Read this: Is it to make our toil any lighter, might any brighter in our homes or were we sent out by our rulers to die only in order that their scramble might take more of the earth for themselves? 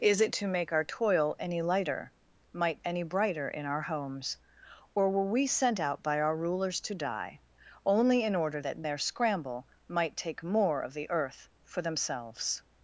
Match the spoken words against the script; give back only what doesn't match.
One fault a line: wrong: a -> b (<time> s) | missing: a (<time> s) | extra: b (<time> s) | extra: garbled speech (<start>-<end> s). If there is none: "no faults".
no faults